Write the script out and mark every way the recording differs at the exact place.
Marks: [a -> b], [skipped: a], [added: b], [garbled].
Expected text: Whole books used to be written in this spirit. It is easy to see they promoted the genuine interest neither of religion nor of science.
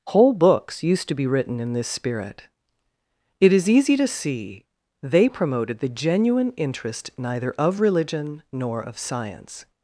Whole books used to be written in this spirit. It is easy to see they promoted the genuine interest neither of religion nor of science.